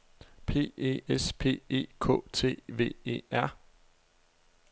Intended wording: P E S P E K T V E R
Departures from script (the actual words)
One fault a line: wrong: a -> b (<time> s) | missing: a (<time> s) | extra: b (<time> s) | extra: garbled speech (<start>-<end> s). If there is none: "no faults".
no faults